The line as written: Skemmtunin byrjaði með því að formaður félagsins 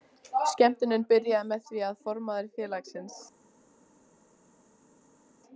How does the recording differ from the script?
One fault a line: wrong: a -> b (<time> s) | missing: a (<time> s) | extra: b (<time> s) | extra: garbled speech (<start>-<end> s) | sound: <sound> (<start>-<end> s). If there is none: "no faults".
no faults